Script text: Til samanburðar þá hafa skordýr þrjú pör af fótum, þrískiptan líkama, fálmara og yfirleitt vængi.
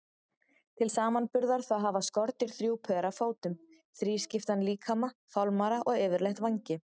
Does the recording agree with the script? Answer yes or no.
yes